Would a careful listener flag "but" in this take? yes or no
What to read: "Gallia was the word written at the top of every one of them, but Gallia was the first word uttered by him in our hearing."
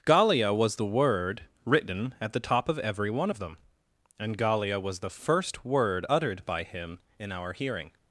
yes